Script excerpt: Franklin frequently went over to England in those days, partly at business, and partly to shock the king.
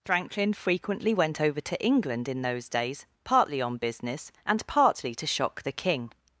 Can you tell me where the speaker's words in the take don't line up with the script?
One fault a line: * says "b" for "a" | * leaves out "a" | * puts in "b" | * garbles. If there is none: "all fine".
* says "on" for "at"